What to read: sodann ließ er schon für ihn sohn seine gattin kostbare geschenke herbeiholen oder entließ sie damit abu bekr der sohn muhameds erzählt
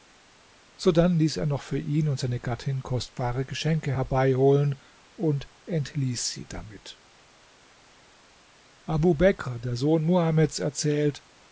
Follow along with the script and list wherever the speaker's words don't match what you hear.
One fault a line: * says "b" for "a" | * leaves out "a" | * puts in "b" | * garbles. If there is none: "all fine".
* says "noch" for "schon"
* says "und" for "sohn"
* says "und" for "oder"